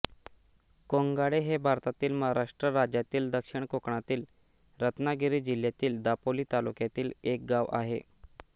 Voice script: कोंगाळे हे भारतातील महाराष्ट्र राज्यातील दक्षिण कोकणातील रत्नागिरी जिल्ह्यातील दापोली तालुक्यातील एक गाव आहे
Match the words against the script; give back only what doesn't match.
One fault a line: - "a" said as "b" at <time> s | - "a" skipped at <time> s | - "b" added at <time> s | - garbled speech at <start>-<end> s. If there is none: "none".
none